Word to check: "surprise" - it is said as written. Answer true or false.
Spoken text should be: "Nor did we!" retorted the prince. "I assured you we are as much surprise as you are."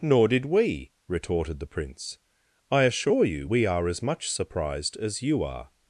false